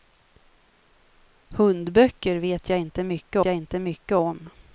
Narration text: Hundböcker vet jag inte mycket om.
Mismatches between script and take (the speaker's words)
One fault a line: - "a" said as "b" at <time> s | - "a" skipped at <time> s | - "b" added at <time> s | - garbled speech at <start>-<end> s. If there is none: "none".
- "jag inte mycket" added at 3.4 s